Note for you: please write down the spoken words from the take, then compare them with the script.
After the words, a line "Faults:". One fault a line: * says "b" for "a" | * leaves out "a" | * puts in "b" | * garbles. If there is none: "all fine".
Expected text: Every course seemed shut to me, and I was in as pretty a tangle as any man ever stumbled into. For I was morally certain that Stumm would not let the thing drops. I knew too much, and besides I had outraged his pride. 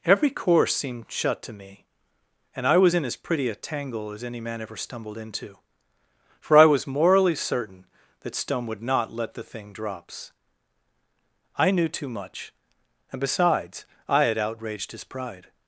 Every course seemed shut to me, and I was in as pretty a tangle as any man ever stumbled into. For I was morally certain that Stumm would not let the thing drops. I knew too much, and besides I had outraged his pride.
Faults:
all fine